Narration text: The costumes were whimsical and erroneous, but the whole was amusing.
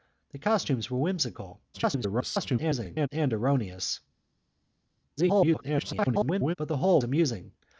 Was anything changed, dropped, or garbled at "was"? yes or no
yes